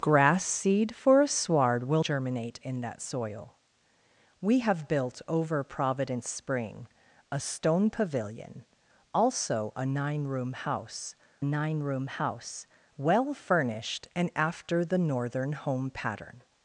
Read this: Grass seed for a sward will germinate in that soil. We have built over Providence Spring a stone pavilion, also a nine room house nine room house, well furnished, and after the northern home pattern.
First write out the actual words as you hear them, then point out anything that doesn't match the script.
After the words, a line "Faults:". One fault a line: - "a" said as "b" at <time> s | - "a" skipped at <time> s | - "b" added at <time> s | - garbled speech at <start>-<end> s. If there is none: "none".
Grass seed for a sward will germinate in that soil. We have built over Providence Spring a stone pavilion, also a nine room house nine room house, well furnished, and after the northern home pattern.
Faults:
none